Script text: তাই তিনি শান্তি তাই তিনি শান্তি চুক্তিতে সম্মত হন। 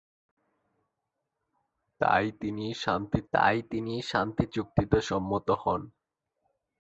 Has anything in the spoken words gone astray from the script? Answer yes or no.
no